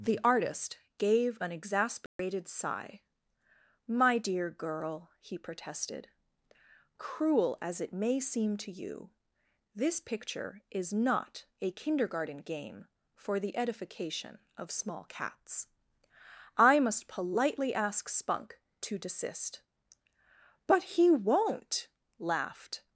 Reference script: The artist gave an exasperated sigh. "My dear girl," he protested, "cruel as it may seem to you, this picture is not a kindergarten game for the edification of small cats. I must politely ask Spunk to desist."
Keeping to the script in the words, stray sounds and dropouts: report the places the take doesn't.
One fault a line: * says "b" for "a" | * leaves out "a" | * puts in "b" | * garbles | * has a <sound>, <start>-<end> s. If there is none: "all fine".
* has a dropout, 2.1-2.2 s
* puts in "But he won't laughed"